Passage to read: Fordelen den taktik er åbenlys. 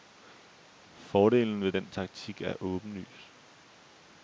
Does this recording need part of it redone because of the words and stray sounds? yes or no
yes